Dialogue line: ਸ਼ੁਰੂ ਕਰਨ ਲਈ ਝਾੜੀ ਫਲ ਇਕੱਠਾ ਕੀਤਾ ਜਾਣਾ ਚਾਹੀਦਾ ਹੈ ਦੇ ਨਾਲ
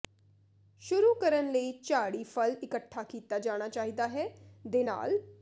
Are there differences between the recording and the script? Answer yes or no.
no